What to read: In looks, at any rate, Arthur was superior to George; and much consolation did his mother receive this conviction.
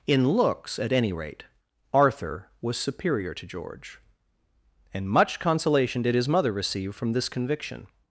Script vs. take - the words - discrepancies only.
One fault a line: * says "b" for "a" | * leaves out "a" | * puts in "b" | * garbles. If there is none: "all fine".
* puts in "from"